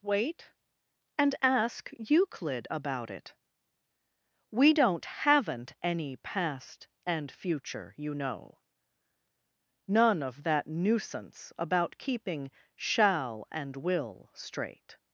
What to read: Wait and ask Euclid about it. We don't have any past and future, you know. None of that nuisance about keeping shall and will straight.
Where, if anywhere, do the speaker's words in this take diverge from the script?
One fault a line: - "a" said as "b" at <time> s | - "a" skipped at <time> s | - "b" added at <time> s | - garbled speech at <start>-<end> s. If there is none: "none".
- "have" said as "haven't" at 5.0 s